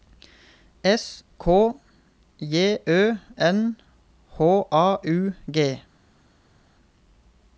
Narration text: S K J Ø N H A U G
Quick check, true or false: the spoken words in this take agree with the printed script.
true